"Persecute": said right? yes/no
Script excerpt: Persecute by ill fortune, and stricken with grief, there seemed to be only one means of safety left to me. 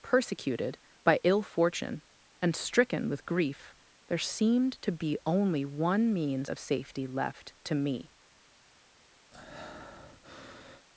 no